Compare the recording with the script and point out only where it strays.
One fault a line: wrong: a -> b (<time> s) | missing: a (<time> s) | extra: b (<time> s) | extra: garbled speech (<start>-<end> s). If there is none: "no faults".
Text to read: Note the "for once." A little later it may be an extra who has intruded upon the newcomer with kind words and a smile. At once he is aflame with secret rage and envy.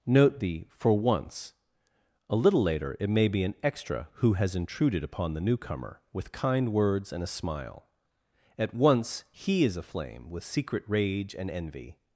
no faults